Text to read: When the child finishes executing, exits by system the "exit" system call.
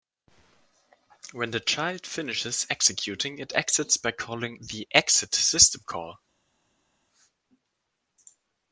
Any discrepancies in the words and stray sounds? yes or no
yes